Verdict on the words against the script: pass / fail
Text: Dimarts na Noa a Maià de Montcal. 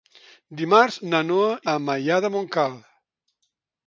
pass